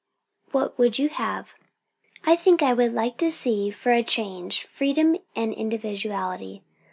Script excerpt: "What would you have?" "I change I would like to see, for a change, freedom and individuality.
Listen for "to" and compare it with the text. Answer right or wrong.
right